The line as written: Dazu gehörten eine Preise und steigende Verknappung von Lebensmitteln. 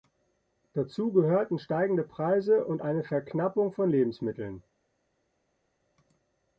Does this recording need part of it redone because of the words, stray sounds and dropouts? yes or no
yes